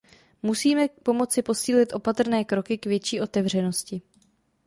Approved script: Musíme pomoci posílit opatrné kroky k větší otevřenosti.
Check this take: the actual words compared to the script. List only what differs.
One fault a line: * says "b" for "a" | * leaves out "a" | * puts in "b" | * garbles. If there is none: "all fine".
all fine